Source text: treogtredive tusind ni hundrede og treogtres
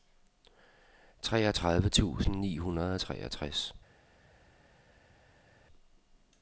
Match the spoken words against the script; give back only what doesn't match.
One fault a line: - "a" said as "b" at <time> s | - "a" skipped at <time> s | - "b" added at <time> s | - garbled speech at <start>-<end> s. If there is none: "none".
none